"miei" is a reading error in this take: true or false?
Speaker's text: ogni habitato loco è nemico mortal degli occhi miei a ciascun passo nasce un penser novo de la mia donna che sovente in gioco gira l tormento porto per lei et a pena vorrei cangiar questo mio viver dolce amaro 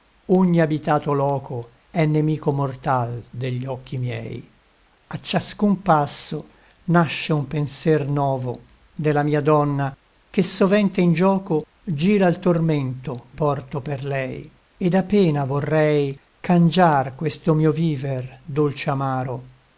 false